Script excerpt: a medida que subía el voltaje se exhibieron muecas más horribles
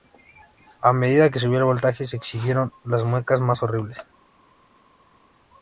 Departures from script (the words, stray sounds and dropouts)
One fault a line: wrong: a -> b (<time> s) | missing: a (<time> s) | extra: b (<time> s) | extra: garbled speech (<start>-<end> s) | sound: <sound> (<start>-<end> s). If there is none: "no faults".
extra: las (2.9 s)